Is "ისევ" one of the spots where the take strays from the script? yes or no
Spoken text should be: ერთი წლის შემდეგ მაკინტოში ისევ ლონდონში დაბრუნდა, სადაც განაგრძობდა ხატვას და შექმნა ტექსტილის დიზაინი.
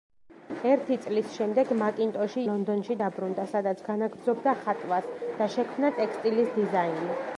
yes